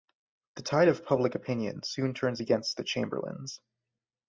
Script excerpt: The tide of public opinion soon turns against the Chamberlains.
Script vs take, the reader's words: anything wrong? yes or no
no